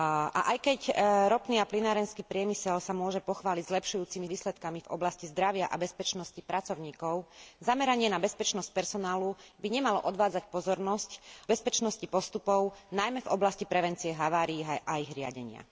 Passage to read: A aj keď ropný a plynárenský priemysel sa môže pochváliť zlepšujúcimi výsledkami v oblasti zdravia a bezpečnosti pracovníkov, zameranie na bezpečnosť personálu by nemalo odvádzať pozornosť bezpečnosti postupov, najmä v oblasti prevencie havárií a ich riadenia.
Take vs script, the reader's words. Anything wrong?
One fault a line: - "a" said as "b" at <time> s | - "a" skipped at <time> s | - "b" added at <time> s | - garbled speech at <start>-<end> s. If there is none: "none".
none